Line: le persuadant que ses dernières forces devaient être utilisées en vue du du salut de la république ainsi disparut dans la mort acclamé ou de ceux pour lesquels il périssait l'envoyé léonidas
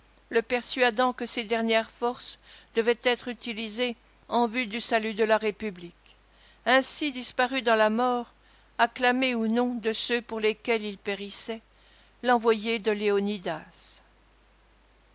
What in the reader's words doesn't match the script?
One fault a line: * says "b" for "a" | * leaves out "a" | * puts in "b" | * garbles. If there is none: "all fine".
* leaves out "du"
* puts in "non"
* puts in "de"